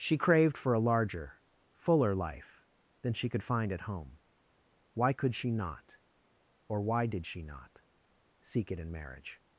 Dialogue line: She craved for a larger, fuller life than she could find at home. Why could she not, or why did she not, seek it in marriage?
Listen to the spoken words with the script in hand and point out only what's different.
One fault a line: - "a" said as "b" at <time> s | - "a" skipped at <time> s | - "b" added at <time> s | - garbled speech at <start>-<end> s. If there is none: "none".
none